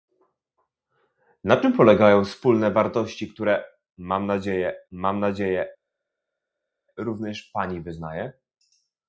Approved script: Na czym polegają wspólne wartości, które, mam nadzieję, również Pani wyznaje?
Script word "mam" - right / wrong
right